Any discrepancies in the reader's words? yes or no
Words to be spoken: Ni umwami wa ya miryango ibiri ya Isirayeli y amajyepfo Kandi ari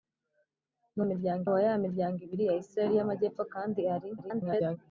yes